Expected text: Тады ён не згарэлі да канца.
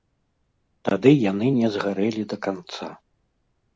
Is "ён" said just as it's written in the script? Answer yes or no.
no